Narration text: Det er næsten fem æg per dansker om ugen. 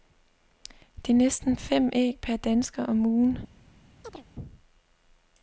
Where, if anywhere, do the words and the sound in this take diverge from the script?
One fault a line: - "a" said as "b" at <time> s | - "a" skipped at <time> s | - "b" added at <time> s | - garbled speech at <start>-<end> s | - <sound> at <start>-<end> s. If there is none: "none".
- chirp at 4.0-4.2 s